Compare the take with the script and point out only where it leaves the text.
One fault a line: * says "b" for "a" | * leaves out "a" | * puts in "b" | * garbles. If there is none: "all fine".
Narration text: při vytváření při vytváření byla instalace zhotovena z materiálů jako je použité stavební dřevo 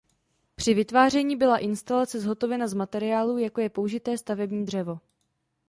* leaves out "při vytváření"